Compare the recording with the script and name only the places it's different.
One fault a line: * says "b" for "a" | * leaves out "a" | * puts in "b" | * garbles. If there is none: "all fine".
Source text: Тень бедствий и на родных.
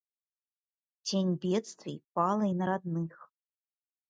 * puts in "пала"